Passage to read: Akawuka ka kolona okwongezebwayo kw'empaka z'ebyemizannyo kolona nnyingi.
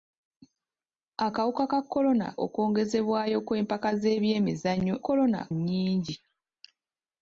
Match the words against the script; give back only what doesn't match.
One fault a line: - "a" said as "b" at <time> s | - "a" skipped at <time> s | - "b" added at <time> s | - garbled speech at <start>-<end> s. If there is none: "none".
none